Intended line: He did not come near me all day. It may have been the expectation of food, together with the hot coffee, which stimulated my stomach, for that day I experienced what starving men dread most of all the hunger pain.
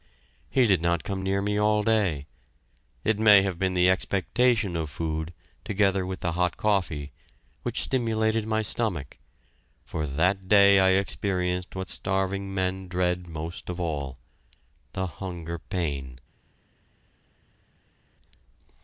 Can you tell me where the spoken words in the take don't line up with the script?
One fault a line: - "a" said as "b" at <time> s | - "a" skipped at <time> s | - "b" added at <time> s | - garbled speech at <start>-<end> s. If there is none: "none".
none